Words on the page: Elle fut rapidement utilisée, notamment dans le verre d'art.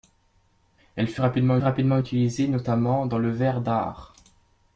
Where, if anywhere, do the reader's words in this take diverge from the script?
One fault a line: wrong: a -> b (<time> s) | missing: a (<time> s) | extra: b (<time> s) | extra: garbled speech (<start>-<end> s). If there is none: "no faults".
extra: rapidement (1.6 s)